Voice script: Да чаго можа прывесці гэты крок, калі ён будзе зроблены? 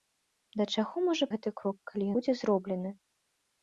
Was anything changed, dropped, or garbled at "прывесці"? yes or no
yes